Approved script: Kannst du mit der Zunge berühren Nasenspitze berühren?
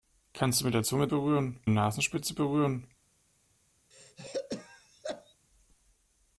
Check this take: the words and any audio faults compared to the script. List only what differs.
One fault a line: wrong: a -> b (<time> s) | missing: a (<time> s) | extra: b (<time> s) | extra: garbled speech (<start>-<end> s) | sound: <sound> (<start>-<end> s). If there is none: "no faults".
sound: throat clearing (3.9-5.4 s)